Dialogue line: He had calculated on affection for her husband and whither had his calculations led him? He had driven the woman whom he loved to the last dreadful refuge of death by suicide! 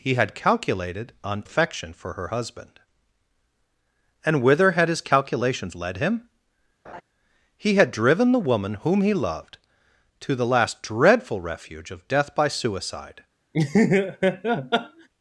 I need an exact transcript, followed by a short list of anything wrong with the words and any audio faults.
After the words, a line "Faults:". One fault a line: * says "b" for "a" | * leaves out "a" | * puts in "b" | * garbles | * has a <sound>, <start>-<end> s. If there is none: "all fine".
He had calculated on affection for her husband and whither had his calculations led him? He had driven the woman whom he loved to the last dreadful refuge of death by suicide!
Faults:
* has a laugh, 6.8-7.0 s
* has a laugh, 13.5-15.1 s